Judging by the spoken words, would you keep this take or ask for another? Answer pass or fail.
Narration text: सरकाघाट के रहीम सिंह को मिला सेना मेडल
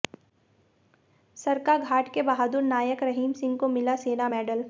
fail